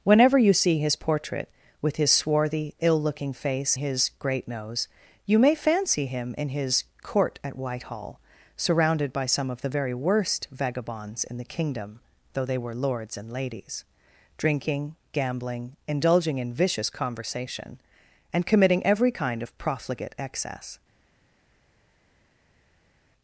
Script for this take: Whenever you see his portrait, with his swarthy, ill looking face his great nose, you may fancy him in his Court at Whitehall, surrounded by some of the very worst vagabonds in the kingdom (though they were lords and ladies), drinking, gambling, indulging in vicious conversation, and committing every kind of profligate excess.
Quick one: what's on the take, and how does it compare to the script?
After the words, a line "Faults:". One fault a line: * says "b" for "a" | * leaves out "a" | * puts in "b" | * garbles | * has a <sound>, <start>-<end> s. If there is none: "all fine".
Whenever you see his portrait, with his swarthy, ill looking face his great nose, you may fancy him in his Court at Whitehall, surrounded by some of the very worst vagabonds in the kingdom (though they were lords and ladies), drinking, gambling, indulging in vicious conversation, and committing every kind of profligate excess.
Faults:
all fine